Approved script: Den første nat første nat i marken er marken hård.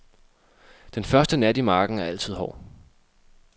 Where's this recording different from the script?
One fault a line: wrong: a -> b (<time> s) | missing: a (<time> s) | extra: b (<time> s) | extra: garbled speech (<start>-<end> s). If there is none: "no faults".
missing: første nat (1.6 s)
wrong: marken -> altid (2.0 s)